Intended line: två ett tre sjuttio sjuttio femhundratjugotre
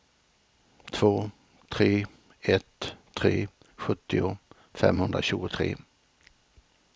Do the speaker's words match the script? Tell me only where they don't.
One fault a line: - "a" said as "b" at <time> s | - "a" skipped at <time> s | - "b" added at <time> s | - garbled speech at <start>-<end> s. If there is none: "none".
- "tre" added at 1.7 s
- "sjuttio" skipped at 4.4 s